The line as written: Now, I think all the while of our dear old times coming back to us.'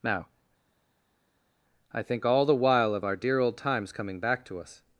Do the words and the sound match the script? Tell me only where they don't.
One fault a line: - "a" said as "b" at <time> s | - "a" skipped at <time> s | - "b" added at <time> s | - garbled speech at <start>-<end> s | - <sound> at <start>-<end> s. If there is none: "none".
none